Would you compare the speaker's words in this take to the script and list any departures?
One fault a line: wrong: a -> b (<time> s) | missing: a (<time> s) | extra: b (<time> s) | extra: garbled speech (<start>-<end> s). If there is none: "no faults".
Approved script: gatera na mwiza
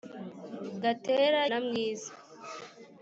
no faults